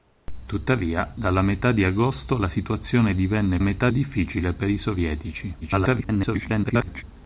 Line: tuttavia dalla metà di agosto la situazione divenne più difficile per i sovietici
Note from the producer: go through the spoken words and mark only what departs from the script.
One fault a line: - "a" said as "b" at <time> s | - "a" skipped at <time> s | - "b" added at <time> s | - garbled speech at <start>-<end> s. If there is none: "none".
- "più" said as "metà" at 3.6 s
- garbled speech at 5.6-7.0 s